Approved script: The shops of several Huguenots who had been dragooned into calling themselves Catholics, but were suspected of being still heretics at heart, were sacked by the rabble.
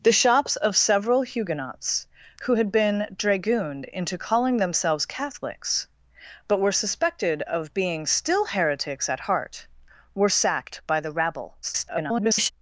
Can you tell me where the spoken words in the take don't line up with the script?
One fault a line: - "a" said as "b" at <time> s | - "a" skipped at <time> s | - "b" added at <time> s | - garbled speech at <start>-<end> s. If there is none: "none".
- garbled speech at 11.6-12.5 s